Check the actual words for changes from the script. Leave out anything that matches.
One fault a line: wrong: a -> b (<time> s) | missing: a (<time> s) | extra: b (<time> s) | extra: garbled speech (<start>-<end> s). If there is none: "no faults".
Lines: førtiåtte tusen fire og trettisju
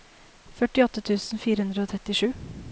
extra: hundre (1.7 s)